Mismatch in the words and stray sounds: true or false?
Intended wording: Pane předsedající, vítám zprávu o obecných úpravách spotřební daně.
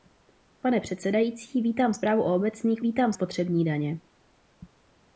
true